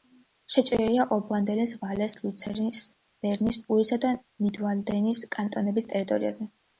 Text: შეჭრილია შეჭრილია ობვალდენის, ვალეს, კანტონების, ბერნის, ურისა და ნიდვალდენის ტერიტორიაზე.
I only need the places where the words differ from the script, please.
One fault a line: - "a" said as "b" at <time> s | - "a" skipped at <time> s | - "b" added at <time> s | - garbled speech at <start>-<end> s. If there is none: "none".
- "შეჭრილია" skipped at 1.0 s
- "კანტონების" said as "ლუცერნის" at 2.2 s
- "კანტონების" added at 5.4 s